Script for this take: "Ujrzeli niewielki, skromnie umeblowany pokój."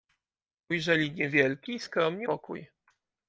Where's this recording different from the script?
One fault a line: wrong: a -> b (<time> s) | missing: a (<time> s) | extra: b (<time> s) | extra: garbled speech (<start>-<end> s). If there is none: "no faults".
missing: umeblowany (2.3 s)